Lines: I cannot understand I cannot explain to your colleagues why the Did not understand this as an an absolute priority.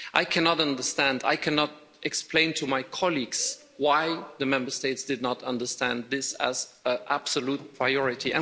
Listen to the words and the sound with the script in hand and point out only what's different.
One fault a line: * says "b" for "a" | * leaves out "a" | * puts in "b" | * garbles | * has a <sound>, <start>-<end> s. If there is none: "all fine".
* says "my" for "your"
* puts in "Member States"
* leaves out "an"